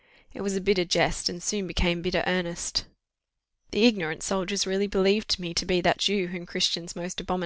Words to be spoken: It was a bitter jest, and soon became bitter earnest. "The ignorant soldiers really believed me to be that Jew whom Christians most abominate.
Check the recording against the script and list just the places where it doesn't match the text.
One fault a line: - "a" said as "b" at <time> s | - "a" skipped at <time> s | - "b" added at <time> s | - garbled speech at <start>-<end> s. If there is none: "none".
none